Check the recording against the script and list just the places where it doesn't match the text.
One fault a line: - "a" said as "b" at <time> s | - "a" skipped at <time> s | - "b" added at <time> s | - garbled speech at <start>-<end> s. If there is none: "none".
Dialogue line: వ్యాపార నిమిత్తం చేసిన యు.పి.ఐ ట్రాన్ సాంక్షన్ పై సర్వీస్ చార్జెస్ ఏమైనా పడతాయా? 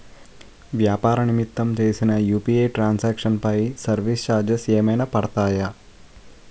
none